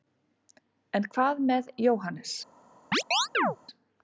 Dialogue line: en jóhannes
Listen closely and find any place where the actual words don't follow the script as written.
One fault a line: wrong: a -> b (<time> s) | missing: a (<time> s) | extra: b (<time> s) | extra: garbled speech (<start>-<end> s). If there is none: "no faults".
extra: hvað með (1.2 s)